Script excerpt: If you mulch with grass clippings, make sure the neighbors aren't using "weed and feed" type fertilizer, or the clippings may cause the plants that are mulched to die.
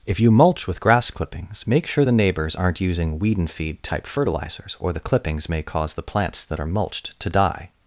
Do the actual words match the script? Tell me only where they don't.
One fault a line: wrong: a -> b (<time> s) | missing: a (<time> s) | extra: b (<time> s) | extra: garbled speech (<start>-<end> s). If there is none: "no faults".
wrong: fertilizer -> fertilizers (4.1 s)